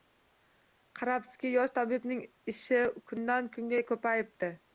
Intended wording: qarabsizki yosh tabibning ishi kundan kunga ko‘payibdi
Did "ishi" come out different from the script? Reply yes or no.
no